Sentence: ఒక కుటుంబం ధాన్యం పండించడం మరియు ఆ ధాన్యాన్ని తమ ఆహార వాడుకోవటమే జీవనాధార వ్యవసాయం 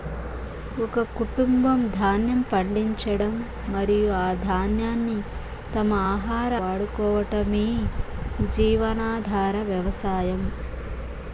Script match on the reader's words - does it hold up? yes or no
yes